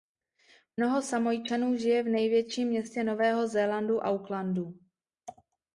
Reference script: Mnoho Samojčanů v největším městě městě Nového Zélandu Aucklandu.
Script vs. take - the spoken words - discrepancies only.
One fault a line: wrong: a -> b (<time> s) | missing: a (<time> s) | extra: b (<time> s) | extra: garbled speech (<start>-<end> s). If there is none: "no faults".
extra: žije (1.8 s)
missing: městě (3.0 s)